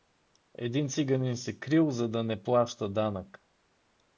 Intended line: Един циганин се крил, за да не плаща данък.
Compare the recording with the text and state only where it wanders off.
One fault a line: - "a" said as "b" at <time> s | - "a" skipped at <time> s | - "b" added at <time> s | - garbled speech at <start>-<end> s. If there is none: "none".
none